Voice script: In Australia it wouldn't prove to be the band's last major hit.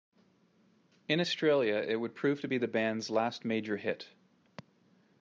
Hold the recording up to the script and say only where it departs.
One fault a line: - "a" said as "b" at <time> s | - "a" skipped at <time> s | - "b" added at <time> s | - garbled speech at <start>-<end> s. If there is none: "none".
- "wouldn't" said as "would" at 2.0 s